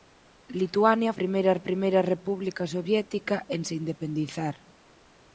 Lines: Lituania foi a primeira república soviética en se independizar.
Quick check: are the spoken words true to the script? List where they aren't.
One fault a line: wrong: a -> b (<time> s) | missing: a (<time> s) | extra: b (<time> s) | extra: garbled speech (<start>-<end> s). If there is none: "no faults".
wrong: foi -> primeira (1.2 s)